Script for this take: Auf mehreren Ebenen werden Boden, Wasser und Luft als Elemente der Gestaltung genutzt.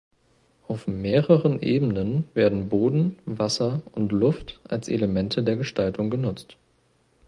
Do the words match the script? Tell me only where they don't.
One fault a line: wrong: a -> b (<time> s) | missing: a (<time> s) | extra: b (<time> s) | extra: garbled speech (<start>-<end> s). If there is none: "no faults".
no faults